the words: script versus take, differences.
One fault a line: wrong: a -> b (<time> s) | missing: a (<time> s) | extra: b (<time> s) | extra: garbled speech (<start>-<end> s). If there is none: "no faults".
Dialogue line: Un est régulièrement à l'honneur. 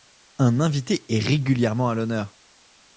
extra: invité (0.6 s)